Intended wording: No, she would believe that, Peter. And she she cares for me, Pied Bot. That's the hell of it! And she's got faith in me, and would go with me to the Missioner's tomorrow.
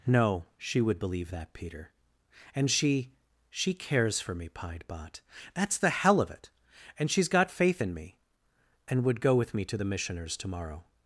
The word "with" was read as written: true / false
true